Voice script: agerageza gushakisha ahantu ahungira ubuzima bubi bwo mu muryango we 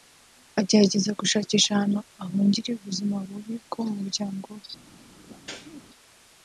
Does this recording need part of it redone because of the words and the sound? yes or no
yes